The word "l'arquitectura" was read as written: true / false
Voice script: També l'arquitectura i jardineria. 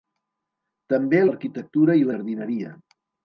true